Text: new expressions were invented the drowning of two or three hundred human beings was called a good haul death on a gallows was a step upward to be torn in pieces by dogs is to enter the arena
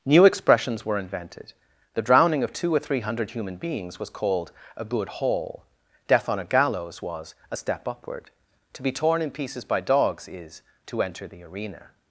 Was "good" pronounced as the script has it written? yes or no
yes